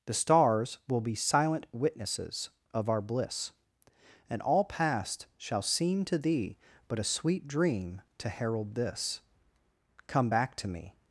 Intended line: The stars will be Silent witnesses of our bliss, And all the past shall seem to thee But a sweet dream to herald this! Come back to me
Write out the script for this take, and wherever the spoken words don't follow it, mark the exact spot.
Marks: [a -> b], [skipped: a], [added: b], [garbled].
The stars will be Silent witnesses of our bliss, And all [skipped: the] past shall seem to thee But a sweet dream to herald this! Come back to me